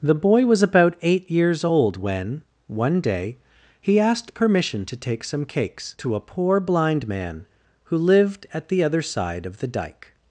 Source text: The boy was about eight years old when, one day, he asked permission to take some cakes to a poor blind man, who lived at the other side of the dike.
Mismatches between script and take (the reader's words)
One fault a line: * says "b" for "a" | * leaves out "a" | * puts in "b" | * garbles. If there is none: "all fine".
all fine